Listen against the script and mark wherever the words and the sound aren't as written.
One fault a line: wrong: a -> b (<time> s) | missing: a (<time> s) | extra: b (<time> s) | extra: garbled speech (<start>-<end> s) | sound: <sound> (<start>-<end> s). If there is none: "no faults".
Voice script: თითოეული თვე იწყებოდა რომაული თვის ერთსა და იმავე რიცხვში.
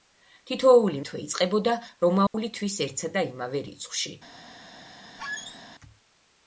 sound: dropout (2.3-2.3 s)
sound: squeak (5.2-5.6 s)